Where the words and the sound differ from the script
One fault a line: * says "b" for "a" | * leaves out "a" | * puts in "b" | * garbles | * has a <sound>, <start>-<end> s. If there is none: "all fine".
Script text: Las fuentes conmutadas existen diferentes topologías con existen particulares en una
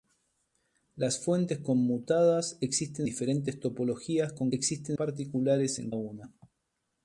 all fine